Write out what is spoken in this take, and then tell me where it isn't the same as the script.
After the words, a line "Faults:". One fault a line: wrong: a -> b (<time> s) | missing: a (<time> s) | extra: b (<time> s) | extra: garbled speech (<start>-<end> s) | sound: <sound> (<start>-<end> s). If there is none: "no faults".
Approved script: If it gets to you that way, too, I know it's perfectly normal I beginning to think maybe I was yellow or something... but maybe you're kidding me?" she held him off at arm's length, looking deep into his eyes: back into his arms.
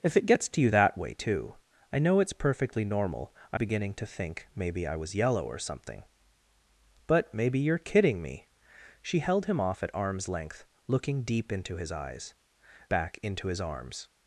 If it gets to you that way, too, I know it's perfectly normal I beginning to think maybe I was yellow or something... but maybe you're kidding me?" she held him off at arm's length, looking deep into his eyes: back into his arms.
Faults:
no faults